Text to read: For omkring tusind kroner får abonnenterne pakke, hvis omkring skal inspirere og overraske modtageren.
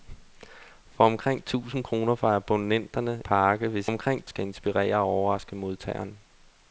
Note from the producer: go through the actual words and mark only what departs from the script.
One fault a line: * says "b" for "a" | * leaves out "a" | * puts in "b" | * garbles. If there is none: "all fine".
all fine